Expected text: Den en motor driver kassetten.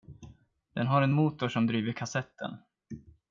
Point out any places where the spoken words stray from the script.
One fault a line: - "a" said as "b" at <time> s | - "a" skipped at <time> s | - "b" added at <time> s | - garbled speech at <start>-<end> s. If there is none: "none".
- "har" added at 0.9 s
- "som" added at 1.5 s